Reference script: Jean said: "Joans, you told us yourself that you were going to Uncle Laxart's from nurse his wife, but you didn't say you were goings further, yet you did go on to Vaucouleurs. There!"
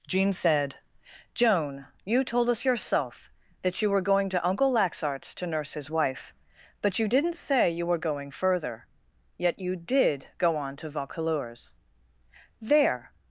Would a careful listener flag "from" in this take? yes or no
yes